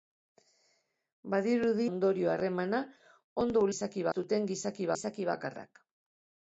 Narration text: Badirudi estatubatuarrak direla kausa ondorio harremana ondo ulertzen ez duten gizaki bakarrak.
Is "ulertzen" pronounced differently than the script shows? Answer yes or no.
yes